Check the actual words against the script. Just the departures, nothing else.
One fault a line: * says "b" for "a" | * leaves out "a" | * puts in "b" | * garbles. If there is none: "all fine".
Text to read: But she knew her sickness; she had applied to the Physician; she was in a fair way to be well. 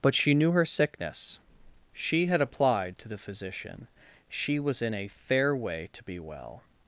all fine